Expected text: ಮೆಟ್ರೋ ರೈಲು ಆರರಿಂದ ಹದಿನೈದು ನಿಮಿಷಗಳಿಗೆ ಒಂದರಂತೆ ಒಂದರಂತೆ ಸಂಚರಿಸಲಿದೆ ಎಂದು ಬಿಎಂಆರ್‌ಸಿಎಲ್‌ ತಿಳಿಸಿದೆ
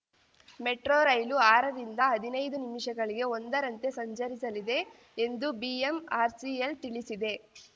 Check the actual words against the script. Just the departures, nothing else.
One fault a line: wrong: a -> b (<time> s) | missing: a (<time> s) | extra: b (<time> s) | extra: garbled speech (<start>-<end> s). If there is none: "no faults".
missing: ಒಂದರಂತೆ (3.9 s)